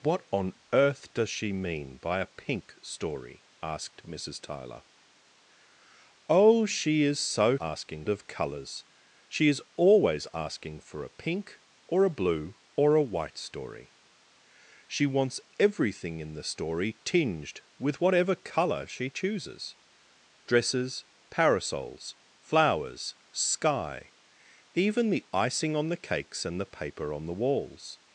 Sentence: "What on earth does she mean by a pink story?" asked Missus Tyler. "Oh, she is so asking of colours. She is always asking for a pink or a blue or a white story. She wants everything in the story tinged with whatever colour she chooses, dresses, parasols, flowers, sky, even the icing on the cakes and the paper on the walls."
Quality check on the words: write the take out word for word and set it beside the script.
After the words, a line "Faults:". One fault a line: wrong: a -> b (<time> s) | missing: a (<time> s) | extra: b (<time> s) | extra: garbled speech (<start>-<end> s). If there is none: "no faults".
"What on earth does she mean by a pink story?" asked Missus Tyler. "Oh, she is so asking of colours. She is always asking for a pink or a blue or a white story. She wants everything in the story tinged with whatever colour she chooses, dresses, parasols, flowers, sky, even the icing on the cakes and the paper on the walls."
Faults:
no faults